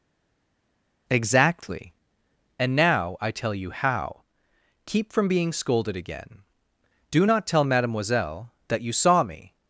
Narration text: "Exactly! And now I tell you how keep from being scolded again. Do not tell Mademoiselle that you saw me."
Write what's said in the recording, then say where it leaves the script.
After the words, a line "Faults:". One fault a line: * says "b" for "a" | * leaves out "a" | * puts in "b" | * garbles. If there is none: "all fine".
"Exactly! And now I tell you how keep from being scolded again. Do not tell Mademoiselle that you saw me."
Faults:
all fine